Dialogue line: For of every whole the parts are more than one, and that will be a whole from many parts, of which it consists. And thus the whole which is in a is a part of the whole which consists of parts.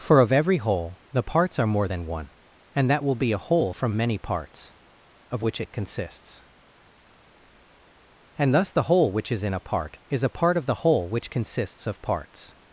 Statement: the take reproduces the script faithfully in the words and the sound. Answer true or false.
false